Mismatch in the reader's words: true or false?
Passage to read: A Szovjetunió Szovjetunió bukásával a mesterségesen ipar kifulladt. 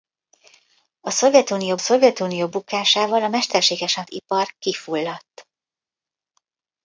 false